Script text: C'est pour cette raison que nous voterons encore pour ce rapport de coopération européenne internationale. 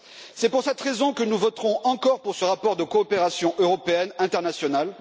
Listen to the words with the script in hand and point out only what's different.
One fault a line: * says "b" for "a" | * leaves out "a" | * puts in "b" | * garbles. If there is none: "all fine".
all fine